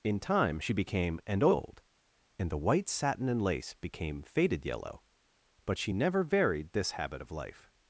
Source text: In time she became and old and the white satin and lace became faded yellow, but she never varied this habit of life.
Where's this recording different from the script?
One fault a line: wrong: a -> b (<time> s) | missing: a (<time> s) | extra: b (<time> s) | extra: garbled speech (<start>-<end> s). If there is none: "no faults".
no faults